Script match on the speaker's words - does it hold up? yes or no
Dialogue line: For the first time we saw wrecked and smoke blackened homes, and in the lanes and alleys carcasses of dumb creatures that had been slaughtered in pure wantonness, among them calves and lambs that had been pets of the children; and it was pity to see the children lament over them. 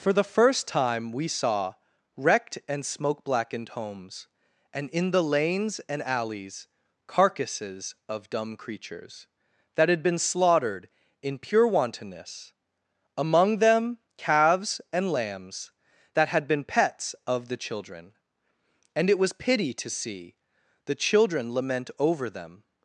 yes